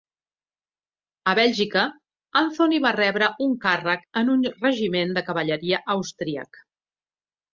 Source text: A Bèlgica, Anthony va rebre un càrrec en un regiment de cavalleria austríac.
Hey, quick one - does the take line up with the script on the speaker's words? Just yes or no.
yes